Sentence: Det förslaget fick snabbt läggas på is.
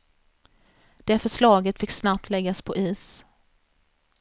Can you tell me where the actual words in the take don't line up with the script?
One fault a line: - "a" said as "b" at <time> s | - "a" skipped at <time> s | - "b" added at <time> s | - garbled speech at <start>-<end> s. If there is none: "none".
none